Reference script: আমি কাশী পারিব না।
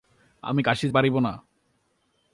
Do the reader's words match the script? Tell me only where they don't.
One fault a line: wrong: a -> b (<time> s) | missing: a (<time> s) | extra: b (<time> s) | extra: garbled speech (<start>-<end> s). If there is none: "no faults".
no faults